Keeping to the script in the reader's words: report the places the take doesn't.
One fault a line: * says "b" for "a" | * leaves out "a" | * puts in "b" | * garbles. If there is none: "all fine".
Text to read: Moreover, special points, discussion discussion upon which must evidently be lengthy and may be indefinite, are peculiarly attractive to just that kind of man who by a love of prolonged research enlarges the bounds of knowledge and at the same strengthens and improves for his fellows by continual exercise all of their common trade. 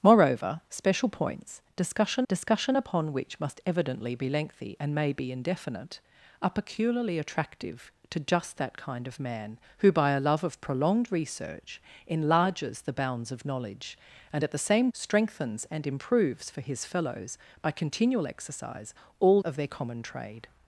all fine